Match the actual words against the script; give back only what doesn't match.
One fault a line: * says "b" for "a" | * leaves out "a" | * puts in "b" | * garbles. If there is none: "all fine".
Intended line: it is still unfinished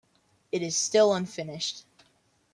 all fine